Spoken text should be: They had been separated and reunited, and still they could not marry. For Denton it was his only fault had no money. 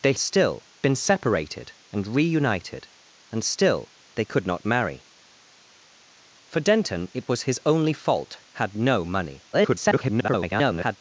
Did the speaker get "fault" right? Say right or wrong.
right